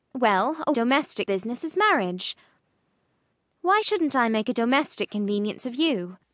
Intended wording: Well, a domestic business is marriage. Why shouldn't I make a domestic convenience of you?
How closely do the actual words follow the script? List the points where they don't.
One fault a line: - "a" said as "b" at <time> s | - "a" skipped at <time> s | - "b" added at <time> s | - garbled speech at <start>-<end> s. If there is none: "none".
none